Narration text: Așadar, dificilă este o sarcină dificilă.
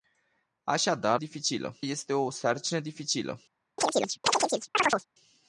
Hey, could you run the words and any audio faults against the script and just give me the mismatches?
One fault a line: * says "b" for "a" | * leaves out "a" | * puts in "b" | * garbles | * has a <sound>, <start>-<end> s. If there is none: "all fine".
* has a chirp, 3.8-5.1 s